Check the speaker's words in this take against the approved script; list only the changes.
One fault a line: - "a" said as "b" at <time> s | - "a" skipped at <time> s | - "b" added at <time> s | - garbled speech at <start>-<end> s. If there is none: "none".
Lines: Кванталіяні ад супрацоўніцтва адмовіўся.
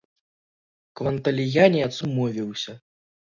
- "супрацоўніцтва" skipped at 1.9 s